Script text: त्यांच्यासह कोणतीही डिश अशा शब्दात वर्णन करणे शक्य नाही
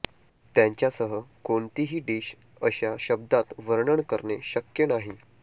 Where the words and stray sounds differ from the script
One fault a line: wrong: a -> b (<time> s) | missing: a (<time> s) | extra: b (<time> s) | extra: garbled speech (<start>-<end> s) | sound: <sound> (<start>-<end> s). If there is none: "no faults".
no faults